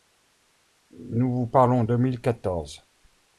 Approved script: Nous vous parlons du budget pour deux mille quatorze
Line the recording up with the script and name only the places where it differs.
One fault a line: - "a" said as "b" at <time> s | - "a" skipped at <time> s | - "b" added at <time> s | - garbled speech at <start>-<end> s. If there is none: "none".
- "du budget pour" skipped at 1.8 s